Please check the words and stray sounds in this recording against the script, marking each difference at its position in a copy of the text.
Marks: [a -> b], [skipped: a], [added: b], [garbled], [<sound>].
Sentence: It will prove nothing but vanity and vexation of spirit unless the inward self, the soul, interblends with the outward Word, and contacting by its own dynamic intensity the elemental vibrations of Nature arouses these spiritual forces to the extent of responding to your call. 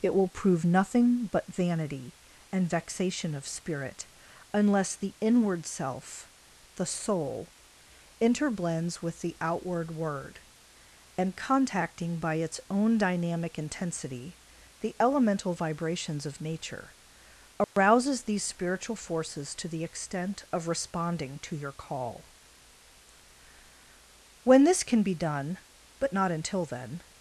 It will prove nothing but vanity and vexation of spirit unless the inward self, the soul, interblends with the outward Word, and contacting by its own dynamic intensity the elemental vibrations of Nature arouses [dropout] these spiritual forces to the extent of responding to your call. [added: When this can be done but not until then]